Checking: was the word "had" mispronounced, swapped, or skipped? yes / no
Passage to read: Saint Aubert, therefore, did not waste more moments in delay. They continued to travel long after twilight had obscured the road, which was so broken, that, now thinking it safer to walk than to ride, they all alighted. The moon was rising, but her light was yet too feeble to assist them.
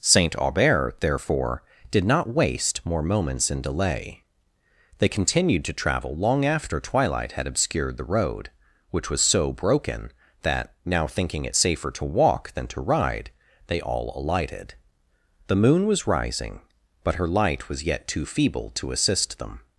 no